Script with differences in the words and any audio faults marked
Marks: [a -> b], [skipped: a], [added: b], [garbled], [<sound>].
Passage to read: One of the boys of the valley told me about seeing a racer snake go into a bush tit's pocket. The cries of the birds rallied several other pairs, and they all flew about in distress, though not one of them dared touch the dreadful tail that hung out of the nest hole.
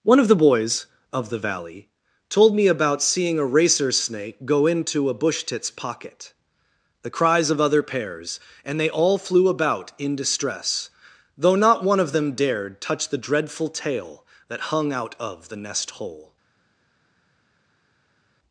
One of the boys of the valley told me about seeing a racer snake go into a bush tit's pocket. The cries of [skipped: the birds rallied several] other pairs, and they all flew about in distress, though not one of them dared touch the dreadful tail that hung out of the nest hole.